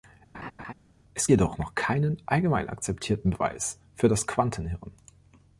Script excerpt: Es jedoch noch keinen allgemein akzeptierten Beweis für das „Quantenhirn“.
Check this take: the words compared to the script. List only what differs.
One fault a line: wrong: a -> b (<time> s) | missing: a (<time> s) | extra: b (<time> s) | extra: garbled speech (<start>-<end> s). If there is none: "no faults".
no faults